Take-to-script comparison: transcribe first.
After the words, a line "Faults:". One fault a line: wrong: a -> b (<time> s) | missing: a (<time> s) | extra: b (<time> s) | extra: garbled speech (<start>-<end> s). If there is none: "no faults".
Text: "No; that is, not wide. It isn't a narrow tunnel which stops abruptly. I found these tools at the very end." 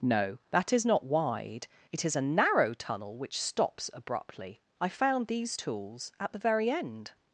"No; that is, not wide. It is a narrow tunnel which stops abruptly. I found these tools at the very end."
Faults:
wrong: isn't -> is (2.0 s)